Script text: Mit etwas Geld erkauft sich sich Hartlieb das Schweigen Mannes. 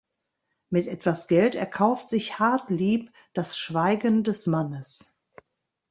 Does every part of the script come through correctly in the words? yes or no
no